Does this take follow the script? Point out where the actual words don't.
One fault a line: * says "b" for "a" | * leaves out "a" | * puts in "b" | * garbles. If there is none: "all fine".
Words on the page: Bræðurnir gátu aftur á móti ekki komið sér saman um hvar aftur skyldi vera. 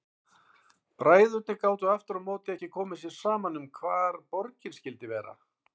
* says "borgin" for "aftur"